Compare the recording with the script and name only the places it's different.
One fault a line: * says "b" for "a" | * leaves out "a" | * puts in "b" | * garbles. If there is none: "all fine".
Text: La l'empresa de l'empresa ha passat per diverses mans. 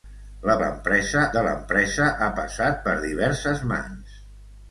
all fine